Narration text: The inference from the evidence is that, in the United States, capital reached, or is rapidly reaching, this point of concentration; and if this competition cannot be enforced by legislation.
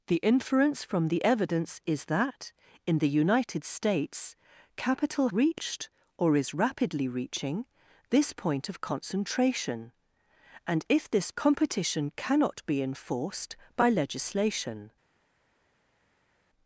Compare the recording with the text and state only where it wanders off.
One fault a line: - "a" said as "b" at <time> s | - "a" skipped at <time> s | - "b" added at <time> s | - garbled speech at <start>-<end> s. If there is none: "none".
none